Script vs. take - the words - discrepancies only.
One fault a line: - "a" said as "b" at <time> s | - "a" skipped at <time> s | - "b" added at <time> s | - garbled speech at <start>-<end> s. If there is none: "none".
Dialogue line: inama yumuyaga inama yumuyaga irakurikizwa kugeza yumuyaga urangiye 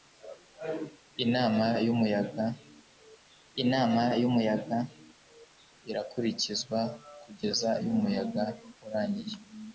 none